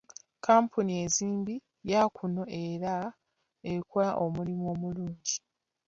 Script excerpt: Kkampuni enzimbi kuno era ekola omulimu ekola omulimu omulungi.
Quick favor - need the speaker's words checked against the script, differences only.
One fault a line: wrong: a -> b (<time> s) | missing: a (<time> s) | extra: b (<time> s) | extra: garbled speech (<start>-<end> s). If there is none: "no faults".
extra: ya (1.9 s)
missing: ekola omulimu (4.6 s)